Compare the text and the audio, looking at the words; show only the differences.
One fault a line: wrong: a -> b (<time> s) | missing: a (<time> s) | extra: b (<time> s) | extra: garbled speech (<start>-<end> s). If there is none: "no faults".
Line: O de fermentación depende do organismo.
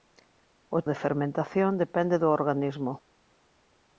no faults